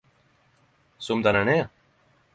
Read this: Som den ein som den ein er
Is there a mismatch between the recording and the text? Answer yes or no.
yes